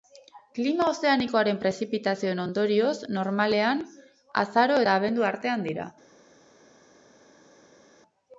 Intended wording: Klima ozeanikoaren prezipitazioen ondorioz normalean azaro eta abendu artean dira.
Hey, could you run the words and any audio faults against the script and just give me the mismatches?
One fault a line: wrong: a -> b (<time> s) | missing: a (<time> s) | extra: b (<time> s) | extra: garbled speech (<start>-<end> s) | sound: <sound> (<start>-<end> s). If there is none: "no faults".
no faults